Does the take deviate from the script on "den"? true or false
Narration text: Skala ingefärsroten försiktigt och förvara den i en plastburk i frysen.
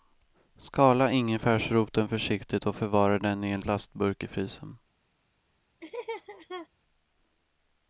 false